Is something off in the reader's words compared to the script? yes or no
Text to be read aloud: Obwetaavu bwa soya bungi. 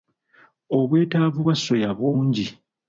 no